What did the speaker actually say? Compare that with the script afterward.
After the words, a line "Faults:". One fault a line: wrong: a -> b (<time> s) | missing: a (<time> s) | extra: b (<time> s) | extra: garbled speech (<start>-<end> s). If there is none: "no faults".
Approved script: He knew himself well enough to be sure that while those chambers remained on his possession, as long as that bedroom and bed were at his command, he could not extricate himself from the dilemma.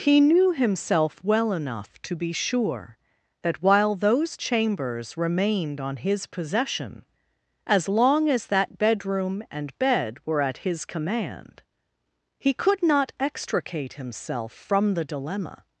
He knew himself well enough to be sure that while those chambers remained on his possession, as long as that bedroom and bed were at his command, he could not extricate himself from the dilemma.
Faults:
no faults